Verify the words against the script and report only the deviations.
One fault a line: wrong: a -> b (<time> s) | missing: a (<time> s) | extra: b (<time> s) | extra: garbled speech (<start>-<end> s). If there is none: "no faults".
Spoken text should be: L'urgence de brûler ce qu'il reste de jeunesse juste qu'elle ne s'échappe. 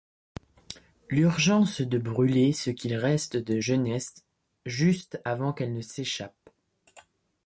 extra: avant (5.2 s)